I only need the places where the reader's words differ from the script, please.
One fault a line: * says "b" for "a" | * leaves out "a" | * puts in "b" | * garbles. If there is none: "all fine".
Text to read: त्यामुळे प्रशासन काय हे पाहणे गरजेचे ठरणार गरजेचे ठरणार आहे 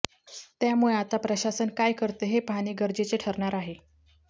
* puts in "आता"
* puts in "करते"
* leaves out "गरजेचे ठरणार"